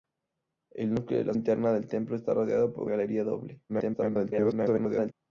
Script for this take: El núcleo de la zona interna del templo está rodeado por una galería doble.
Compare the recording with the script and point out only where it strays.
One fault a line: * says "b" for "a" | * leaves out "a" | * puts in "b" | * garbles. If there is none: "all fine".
* leaves out "zona"
* leaves out "una"
* garbles